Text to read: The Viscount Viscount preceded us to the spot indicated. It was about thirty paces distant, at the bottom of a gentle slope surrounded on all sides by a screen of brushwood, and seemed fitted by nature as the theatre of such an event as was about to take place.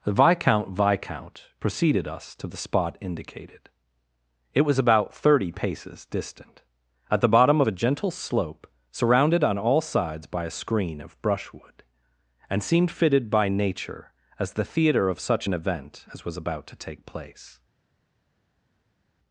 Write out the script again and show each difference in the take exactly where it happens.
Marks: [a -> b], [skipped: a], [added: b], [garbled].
The Viscount Viscount preceded us to the spot indicated. It was about thirty paces distant, at the bottom of a gentle slope surrounded on all sides by a screen of brushwood, and seemed fitted by nature as the theatre of such an event as was about to take place.